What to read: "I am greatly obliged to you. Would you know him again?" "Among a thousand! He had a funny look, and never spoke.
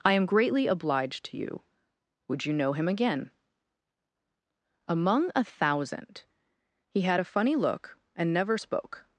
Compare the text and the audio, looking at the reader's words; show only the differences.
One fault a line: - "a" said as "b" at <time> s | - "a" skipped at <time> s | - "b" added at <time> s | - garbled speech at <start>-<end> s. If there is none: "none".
none